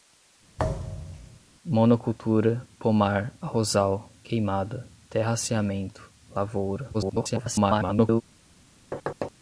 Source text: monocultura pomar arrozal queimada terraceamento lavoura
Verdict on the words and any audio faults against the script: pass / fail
fail